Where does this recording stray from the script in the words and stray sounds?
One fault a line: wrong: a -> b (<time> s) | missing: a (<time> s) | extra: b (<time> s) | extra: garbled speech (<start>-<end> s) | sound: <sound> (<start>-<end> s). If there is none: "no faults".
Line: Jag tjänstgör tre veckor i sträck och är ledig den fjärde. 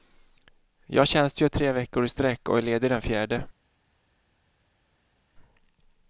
no faults